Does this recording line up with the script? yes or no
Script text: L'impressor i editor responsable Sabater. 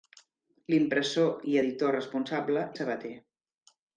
yes